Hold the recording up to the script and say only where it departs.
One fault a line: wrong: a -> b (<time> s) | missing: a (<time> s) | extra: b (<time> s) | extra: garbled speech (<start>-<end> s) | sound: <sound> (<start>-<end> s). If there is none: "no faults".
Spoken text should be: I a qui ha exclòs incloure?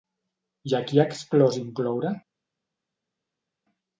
no faults